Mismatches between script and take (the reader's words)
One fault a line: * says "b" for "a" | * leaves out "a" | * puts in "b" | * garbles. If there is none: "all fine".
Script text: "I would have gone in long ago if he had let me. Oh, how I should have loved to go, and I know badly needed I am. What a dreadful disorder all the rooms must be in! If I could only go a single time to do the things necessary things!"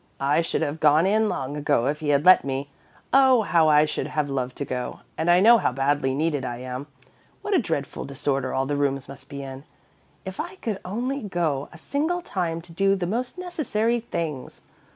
* says "should" for "would"
* puts in "how"
* says "most" for "things"